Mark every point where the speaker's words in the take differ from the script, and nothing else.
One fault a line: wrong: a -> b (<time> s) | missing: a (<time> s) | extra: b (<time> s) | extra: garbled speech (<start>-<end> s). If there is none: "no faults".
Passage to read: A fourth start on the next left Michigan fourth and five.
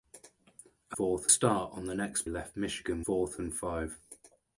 no faults